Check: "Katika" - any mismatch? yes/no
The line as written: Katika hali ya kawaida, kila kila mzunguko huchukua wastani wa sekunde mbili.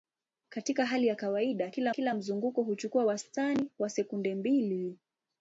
no